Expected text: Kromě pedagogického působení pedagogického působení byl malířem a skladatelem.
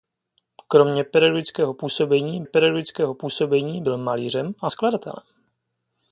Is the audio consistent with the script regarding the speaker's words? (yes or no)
yes